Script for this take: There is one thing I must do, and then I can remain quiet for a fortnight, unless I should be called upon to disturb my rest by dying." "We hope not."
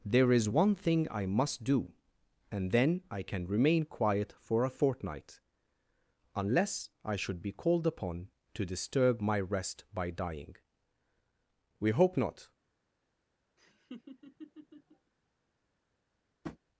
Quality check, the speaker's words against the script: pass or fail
pass